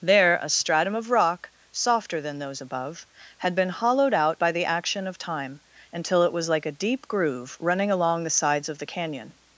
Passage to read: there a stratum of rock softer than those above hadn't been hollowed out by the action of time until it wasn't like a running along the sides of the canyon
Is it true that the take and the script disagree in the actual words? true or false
true